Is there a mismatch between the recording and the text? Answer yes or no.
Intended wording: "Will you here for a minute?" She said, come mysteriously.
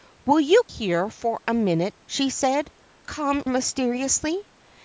no